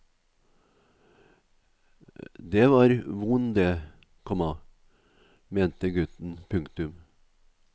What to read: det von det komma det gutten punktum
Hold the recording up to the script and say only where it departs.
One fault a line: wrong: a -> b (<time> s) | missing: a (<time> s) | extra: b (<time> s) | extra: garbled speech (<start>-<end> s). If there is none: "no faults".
extra: var (2.7 s)
wrong: det -> mente (5.5 s)